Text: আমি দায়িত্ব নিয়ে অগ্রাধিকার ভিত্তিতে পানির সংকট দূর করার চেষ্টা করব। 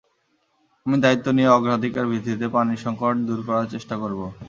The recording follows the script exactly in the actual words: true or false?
true